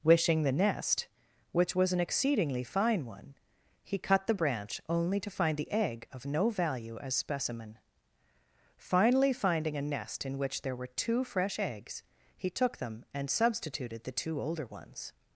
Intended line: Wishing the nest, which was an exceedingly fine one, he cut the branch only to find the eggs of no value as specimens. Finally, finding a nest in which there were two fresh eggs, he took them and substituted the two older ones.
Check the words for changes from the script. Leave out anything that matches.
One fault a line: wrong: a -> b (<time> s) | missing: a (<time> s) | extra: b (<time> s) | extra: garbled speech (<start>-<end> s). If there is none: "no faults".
wrong: eggs -> egg (5.7 s)
wrong: specimens -> specimen (7.2 s)